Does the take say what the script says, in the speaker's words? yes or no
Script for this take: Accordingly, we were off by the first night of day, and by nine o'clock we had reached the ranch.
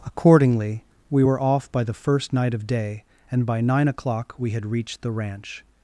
yes